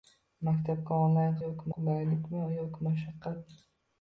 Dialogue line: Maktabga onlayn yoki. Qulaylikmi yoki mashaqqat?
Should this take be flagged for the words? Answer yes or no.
no